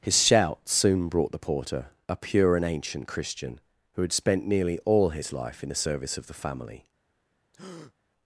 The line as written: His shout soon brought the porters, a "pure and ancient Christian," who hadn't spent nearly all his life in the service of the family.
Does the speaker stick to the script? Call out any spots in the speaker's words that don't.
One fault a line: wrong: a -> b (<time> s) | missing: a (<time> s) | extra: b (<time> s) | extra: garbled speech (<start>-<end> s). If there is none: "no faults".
wrong: porters -> porter (1.4 s)
wrong: hadn't -> had (4.0 s)